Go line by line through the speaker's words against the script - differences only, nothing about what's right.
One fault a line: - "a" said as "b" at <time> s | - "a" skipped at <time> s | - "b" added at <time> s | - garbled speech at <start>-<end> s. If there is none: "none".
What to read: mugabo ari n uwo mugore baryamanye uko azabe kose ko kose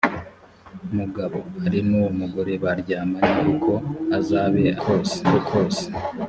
none